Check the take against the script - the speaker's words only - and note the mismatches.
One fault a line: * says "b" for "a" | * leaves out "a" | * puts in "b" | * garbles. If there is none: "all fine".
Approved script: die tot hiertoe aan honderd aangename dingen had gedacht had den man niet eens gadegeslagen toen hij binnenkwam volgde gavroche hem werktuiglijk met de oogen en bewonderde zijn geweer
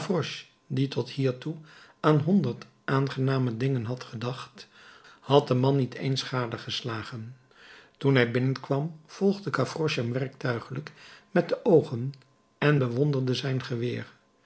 all fine